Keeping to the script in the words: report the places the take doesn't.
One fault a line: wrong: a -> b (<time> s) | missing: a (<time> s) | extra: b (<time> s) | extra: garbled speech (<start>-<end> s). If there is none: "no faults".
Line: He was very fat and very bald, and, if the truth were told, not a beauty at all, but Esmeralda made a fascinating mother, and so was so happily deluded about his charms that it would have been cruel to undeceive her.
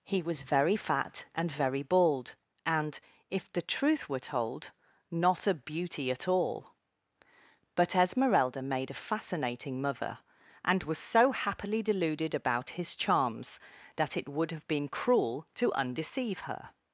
missing: so (10.8 s)